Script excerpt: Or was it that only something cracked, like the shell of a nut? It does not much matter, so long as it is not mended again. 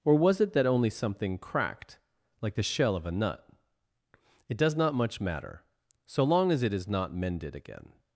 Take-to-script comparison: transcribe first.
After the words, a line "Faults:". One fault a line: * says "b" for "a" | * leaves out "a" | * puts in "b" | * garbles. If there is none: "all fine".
Or was it that only something cracked, like the shell of a nut? It does not much matter, so long as it is not mended again.
Faults:
all fine